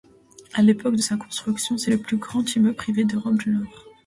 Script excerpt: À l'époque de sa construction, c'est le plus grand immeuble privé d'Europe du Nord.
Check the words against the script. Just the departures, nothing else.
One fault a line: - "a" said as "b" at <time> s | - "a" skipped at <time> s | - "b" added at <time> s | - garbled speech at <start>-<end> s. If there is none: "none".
none